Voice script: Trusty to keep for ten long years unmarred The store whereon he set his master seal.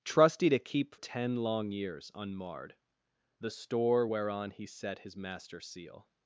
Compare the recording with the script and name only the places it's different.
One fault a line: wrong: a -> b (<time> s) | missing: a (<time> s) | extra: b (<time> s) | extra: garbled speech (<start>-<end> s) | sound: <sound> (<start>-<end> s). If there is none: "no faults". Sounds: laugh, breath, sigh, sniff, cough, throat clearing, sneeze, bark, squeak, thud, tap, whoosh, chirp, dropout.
missing: for (0.9 s)